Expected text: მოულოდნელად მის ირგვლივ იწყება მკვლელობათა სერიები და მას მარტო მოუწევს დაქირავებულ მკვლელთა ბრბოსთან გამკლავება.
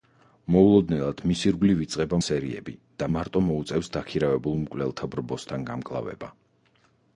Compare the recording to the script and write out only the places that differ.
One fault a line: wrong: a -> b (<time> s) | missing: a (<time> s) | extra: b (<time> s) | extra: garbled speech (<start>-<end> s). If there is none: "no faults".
missing: მკვლელობათა (2.2 s)
missing: მას (3.1 s)